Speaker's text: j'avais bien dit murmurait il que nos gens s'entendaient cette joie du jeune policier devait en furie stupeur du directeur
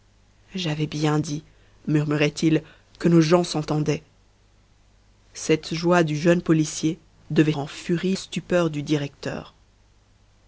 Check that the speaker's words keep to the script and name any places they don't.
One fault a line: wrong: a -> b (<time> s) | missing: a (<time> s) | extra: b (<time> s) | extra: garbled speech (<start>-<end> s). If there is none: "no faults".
no faults